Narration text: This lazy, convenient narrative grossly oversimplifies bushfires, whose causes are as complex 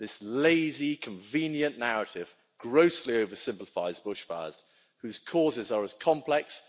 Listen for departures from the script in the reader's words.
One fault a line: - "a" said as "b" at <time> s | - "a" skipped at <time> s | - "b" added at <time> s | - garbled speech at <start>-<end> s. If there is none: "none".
none